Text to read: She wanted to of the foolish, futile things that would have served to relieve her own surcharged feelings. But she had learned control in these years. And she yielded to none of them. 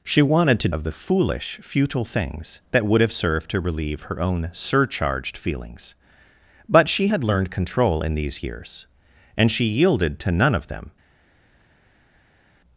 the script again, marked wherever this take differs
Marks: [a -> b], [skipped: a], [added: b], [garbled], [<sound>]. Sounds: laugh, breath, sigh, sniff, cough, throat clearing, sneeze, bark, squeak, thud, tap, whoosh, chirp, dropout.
She wanted to of the foolish, futile things that would have served to relieve her own surcharged feelings. But she had learned control in these years. And she yielded to none of them.